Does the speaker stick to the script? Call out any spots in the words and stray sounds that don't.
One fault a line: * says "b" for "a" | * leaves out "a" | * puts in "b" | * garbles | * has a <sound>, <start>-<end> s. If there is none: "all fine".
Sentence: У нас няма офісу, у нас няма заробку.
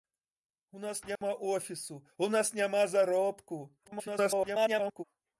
* has a dropout, 1.2-1.2 s
* garbles